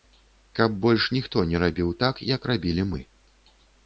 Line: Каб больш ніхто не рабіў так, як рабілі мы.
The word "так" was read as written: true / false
true